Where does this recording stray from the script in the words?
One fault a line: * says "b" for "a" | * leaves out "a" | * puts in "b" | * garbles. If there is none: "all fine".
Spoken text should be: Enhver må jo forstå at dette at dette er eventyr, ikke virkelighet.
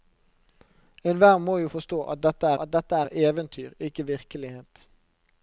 all fine